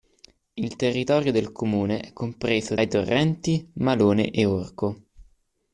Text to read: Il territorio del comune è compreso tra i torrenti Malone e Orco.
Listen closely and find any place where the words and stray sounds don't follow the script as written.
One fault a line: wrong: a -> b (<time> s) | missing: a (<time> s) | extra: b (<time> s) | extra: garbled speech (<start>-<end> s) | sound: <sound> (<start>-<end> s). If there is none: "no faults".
missing: tra (2.8 s)